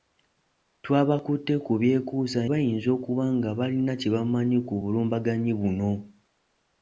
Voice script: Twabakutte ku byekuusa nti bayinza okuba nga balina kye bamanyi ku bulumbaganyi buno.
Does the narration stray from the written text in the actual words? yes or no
yes